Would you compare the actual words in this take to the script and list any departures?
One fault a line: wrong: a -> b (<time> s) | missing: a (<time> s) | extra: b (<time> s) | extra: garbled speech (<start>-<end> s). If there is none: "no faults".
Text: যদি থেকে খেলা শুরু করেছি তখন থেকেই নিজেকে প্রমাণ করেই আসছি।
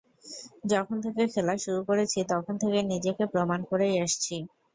wrong: যদি -> যখন (0.7 s)